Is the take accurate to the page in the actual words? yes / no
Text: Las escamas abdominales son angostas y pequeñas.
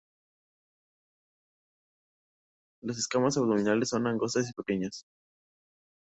yes